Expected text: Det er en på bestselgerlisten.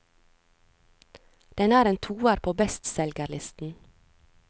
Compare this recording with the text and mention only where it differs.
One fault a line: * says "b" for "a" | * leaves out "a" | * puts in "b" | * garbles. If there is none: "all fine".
* says "Den" for "Det"
* puts in "toer"